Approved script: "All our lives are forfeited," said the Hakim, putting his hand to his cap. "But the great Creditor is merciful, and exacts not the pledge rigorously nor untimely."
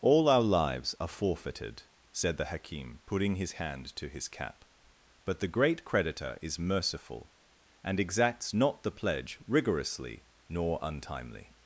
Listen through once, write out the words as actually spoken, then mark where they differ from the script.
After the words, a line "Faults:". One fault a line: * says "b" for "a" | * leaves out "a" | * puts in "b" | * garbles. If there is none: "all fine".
"All our lives are forfeited," said the Hakim, putting his hand to his cap. "But the great Creditor is merciful, and exacts not the pledge rigorously nor untimely."
Faults:
all fine